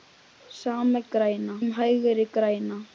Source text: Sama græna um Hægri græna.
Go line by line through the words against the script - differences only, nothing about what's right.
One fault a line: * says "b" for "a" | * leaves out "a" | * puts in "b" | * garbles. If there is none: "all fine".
all fine